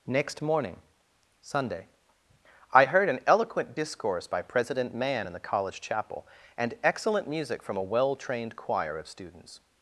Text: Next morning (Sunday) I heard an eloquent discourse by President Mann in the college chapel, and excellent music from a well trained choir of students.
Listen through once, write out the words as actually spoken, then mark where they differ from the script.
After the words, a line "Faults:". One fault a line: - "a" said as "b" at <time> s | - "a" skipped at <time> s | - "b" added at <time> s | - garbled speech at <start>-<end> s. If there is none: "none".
Next morning (Sunday) I heard an eloquent discourse by President Mann in the college chapel, and excellent music from a well trained choir of students.
Faults:
none